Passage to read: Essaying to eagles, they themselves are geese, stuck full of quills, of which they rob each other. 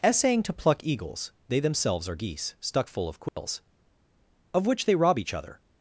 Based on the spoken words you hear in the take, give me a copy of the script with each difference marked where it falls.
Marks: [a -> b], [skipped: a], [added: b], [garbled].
Essaying to [added: pluck] eagles, they themselves are geese, stuck full of quills, of which they rob each other.